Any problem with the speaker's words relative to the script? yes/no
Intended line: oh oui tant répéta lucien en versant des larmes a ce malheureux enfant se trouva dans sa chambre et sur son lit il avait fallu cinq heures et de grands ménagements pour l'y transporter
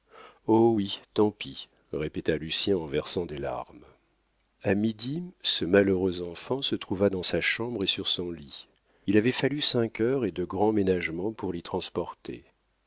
yes